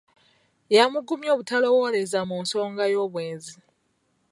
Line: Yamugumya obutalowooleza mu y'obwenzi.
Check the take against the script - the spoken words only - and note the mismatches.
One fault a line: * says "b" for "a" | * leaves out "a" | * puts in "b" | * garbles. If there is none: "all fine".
* puts in "nsonga"